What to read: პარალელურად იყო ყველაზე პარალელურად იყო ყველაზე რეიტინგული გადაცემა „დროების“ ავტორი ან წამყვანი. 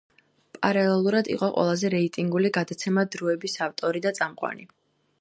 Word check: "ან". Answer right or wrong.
wrong